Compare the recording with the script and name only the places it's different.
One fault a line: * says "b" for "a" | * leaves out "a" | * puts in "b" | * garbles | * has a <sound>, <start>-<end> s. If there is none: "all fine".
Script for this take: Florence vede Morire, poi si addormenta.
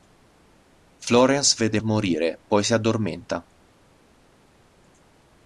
all fine